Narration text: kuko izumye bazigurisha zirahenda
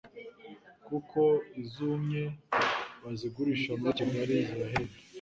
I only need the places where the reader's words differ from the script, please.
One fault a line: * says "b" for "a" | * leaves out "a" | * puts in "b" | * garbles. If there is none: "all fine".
* puts in "muri Kigali"